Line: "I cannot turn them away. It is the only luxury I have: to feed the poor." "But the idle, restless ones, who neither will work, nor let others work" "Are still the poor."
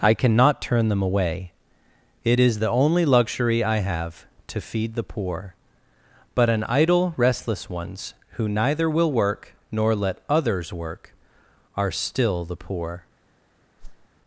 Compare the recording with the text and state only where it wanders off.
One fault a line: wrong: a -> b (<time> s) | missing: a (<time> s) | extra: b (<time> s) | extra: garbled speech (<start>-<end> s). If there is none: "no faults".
wrong: the -> an (6.5 s)